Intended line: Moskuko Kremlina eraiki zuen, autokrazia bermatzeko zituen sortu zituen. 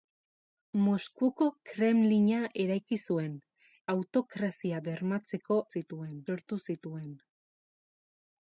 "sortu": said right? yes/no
yes